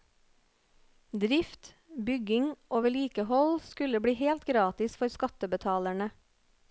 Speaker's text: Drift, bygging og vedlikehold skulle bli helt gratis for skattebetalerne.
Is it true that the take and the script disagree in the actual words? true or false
false